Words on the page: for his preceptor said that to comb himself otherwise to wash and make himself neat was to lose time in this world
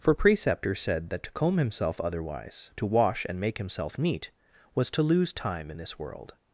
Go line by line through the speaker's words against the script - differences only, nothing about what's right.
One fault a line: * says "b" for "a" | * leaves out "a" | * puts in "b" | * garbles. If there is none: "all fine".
* leaves out "his"